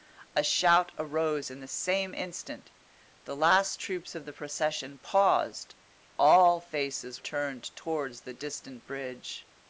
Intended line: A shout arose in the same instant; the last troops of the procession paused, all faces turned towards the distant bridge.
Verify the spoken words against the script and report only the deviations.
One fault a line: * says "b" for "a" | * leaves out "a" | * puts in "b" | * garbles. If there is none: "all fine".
all fine